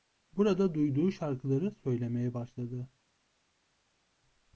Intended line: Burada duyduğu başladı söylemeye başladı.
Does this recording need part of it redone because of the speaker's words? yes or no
yes